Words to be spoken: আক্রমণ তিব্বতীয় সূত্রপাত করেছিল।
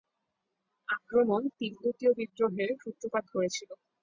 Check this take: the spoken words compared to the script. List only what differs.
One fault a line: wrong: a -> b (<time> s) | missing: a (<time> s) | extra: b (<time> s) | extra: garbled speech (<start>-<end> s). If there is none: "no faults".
extra: বিদ্রোহের (2.2 s)